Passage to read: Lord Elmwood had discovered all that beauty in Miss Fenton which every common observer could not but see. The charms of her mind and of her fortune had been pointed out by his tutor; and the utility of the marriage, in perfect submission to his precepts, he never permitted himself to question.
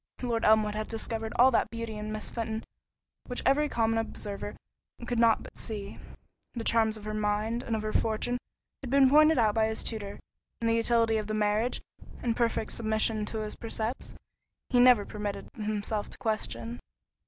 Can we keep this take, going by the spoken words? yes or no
yes